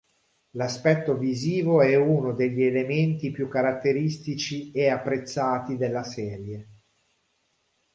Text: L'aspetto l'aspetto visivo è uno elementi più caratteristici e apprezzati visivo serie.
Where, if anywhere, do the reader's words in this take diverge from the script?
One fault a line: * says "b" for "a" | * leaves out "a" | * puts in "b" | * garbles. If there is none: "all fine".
* leaves out "l'aspetto"
* puts in "degli"
* says "della" for "visivo"